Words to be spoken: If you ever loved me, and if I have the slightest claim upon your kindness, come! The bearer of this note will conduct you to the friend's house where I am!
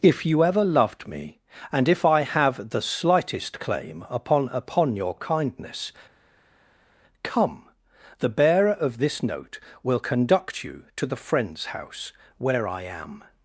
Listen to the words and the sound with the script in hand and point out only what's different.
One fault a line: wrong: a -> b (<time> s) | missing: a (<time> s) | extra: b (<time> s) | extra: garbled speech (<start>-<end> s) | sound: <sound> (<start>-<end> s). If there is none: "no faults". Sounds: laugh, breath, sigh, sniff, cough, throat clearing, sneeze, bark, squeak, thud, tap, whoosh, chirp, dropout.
extra: upon (4.5 s)